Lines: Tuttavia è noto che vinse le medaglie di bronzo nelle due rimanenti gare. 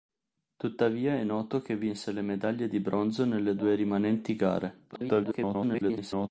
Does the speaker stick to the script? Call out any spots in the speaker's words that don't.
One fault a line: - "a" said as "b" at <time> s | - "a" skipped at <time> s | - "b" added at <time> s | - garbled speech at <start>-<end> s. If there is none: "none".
- garbled speech at 4.9-6.3 s